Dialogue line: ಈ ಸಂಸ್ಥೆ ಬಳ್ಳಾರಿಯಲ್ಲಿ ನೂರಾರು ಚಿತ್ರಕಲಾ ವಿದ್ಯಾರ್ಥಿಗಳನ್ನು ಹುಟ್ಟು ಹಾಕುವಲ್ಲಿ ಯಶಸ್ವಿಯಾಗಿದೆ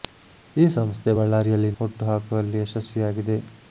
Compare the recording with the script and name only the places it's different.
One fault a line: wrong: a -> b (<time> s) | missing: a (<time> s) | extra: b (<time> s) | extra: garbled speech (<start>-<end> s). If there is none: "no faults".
missing: ನೂರಾರು ಚಿತ್ರಕಲಾ ವಿದ್ಯಾರ್ಥಿಗಳನ್ನು (1.7 s)